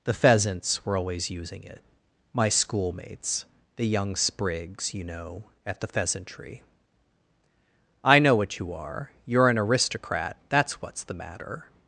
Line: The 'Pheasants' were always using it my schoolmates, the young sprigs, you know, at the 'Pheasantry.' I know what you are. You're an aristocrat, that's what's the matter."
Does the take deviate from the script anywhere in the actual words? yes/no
no